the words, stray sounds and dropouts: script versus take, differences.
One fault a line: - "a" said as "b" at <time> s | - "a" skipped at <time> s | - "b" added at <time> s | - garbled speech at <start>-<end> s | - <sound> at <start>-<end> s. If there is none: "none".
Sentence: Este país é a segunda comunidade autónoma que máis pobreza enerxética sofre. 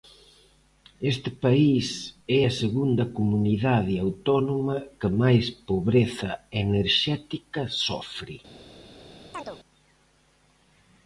- chirp at 9.3-9.6 s